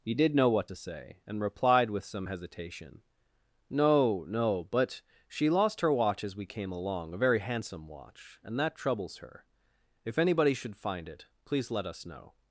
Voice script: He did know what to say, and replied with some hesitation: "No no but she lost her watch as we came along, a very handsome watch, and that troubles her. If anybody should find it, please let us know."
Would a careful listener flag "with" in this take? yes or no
no